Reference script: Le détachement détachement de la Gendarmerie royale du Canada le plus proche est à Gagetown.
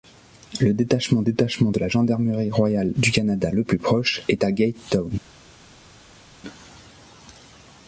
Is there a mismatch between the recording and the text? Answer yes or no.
no